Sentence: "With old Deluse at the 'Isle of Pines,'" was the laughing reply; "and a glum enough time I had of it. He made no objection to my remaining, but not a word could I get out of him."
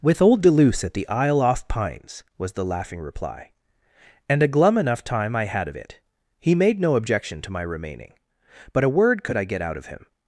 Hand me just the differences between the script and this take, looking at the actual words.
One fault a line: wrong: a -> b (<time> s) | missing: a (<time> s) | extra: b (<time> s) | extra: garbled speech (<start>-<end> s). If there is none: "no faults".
wrong: of -> off (1.4 s)
missing: not (8.8 s)